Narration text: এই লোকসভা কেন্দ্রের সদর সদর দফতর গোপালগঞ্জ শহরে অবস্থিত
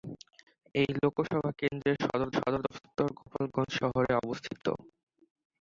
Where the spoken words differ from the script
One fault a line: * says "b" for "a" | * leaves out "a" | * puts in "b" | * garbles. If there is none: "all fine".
all fine